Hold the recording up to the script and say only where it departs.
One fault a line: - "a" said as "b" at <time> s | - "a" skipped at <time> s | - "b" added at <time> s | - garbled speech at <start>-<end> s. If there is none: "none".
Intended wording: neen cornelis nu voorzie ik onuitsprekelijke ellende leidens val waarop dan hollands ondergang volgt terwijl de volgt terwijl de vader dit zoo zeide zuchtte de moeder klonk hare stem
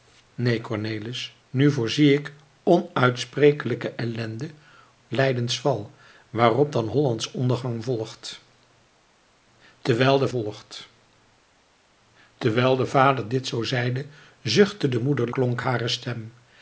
none